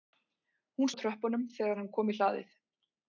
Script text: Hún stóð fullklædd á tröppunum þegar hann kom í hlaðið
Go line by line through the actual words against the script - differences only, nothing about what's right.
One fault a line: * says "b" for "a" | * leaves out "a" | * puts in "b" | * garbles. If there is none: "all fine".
* leaves out "stóð fullklædd"